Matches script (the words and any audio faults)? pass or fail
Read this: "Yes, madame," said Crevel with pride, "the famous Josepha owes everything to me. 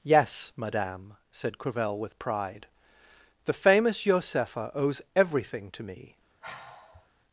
fail